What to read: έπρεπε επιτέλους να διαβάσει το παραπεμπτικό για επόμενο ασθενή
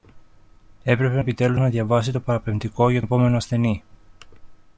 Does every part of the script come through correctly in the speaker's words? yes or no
yes